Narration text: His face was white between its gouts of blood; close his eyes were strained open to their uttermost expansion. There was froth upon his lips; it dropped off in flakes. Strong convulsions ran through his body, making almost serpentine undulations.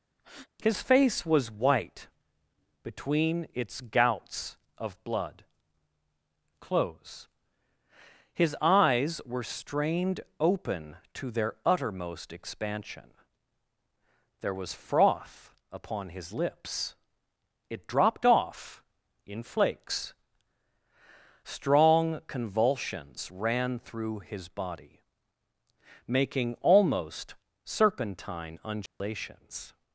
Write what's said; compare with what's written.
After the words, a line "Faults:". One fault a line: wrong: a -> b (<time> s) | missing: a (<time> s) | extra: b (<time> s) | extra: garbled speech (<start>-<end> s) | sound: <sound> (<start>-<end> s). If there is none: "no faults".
His face was white between its gouts of blood; close his eyes were strained open to their uttermost expansion. There was froth upon his lips; it dropped off in flakes. Strong convulsions ran through his body, making almost serpentine undulations.
Faults:
sound: breath (0.2-0.5 s)
sound: dropout (28.9-29.0 s)